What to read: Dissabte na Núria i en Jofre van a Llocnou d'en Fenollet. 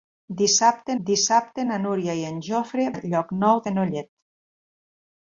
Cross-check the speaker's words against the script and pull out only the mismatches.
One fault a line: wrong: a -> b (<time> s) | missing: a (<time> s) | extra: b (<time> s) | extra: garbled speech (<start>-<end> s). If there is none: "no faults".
extra: dissabte (1.1 s)
missing: van (2.9 s)
missing: d'en (3.6 s)